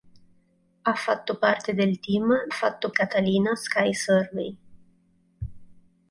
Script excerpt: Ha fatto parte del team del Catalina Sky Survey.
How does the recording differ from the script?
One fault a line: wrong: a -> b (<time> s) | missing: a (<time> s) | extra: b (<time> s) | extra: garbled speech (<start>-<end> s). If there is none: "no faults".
wrong: del -> fatto (2.5 s)